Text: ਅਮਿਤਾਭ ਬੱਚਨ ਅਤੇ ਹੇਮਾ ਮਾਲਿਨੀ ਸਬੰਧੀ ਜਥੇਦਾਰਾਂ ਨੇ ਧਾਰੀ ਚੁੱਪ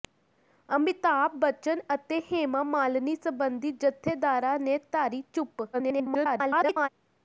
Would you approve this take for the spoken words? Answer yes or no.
no